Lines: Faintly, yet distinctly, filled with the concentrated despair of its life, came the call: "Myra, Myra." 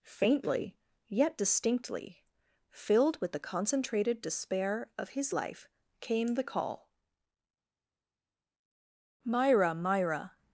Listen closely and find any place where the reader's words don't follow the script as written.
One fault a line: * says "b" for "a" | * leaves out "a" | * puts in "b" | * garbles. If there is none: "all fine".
* says "his" for "its"